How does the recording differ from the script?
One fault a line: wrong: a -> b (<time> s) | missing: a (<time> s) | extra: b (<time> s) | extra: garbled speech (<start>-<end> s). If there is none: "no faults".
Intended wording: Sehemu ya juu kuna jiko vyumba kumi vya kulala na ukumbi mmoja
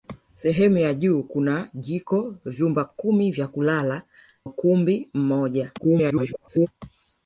missing: na (4.0 s)
extra: garbled speech (5.8-6.7 s)